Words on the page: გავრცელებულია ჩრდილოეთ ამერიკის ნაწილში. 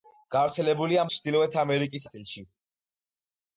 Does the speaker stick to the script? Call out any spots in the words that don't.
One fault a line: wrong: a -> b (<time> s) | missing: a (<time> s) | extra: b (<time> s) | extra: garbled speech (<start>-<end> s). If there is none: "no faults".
no faults